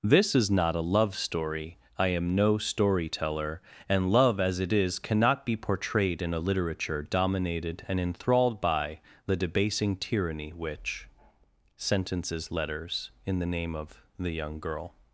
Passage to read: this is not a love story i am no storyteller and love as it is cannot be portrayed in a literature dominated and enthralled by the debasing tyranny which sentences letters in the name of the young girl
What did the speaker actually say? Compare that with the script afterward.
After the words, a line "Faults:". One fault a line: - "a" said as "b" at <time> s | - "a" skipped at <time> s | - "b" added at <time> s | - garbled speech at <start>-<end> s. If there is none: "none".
this is not a love story i am no storyteller and love as it is cannot be portrayed in a literature dominated and enthralled by the debasing tyranny which sentences letters in the name of the young girl
Faults:
none